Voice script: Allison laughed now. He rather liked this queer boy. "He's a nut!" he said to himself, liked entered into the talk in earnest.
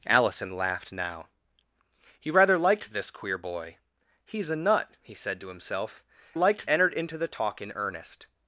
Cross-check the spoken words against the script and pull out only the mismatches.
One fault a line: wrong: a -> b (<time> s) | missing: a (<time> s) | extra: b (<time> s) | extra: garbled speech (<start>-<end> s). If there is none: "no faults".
no faults